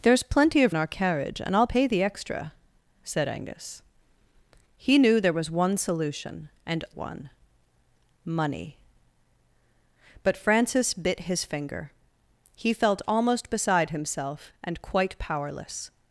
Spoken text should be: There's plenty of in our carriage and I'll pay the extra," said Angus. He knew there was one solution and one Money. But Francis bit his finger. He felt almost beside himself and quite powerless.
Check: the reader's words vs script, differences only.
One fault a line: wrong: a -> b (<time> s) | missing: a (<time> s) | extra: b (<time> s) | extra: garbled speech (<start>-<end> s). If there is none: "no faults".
no faults